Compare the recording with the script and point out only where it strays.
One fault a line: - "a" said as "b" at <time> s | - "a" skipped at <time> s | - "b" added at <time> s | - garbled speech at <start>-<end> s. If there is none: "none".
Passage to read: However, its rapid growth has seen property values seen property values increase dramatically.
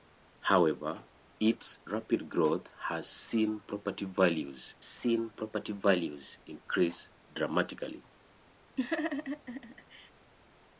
none